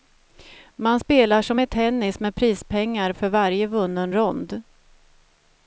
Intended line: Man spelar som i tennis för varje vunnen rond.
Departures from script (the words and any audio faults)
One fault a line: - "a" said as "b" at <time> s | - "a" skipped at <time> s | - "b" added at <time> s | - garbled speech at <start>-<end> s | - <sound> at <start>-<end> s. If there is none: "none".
- "med prispengar" added at 2.2 s